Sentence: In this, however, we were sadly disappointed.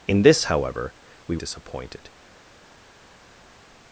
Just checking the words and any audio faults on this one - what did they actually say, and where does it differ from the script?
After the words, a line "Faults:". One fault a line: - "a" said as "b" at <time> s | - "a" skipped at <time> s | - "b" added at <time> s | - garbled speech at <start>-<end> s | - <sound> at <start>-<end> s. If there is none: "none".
In this, however, we disappointed.
Faults:
- "were sadly" skipped at 1.4 s